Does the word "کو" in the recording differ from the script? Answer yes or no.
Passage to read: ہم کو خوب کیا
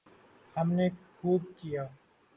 yes